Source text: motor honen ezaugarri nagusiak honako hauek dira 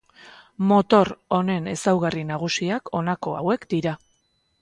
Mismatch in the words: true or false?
false